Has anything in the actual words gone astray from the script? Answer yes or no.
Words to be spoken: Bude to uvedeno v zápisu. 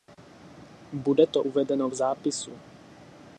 no